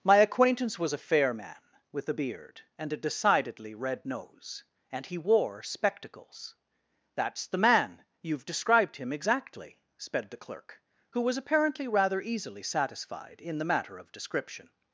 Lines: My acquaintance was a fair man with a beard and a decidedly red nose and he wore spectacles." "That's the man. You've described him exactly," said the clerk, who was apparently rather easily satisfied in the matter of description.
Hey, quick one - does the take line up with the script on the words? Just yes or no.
no